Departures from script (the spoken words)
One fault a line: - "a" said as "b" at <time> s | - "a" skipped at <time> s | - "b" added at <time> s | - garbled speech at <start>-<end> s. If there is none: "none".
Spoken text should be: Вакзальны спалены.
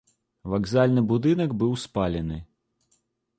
- "будынак быў" added at 1.1 s